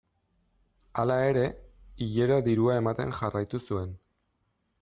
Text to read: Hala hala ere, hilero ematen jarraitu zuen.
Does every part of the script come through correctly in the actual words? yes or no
no